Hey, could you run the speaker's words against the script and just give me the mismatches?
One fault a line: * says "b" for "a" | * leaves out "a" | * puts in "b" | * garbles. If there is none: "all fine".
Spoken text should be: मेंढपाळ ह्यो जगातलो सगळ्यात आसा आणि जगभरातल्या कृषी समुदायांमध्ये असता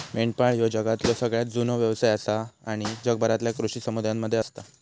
* puts in "जुनो व्यवसाय"